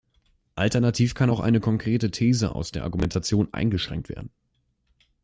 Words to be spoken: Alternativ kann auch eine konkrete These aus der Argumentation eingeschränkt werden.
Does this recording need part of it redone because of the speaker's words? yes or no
no